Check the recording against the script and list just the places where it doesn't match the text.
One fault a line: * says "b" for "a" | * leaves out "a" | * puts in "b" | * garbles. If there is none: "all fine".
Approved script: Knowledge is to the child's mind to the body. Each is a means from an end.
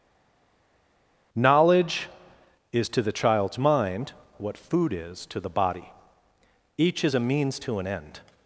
* puts in "what food is"
* says "to" for "from"